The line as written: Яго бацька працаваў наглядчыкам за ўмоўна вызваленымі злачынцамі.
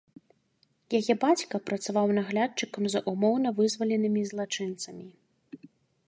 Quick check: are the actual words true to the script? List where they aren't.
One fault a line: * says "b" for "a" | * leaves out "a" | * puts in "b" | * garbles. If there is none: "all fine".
* says "Яе" for "Яго"